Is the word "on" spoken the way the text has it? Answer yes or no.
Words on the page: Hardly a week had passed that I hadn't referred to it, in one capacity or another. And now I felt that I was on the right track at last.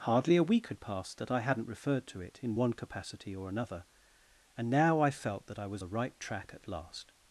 no